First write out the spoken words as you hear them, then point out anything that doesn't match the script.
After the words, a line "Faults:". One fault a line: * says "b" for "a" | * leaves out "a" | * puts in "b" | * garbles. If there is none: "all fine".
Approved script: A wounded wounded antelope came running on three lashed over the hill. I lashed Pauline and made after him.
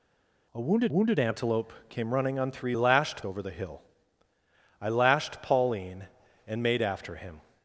A wounded wounded antelope came running on three lashed over the hill. I lashed Pauline and made after him.
Faults:
all fine